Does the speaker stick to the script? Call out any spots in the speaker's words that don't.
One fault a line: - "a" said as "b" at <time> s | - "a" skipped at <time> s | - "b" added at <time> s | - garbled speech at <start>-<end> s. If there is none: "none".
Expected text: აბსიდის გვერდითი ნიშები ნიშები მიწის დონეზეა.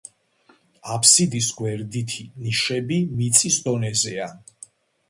- "ნიშები" skipped at 3.0 s